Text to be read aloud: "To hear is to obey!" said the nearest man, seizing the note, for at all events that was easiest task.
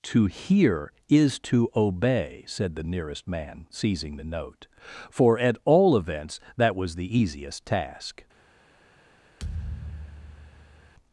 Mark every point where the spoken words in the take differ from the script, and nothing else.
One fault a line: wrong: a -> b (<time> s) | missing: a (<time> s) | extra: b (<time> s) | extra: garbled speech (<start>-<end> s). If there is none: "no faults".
extra: the (7.0 s)